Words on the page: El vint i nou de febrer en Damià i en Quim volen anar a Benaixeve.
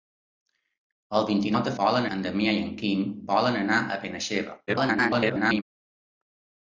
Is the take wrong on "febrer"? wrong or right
wrong